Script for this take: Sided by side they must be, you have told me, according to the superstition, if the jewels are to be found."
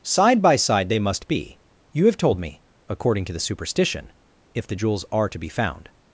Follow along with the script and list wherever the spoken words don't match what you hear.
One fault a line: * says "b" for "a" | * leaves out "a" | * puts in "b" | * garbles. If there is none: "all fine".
* says "Side" for "Sided"